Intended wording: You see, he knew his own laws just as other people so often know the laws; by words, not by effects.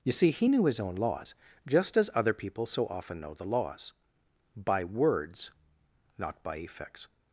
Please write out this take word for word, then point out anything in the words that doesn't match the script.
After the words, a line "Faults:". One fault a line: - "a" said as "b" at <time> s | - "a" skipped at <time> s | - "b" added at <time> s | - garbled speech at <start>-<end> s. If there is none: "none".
You see, he knew his own laws just as other people so often know the laws; by words, not by effects.
Faults:
none